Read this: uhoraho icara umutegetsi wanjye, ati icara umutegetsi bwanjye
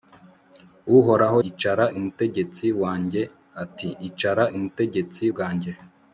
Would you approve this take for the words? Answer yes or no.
yes